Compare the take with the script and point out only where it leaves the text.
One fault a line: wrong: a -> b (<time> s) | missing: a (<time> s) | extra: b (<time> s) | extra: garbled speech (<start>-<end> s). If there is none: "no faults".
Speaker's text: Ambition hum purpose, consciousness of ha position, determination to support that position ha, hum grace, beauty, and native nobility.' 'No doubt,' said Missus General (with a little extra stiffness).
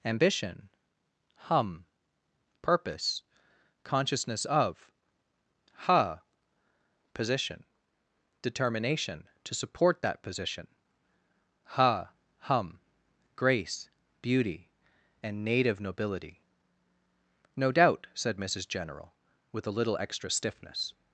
no faults